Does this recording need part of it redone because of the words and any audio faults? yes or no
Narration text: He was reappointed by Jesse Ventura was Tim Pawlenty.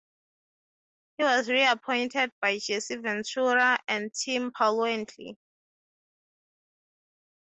yes